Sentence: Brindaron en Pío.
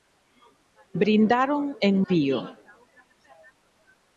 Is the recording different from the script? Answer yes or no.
no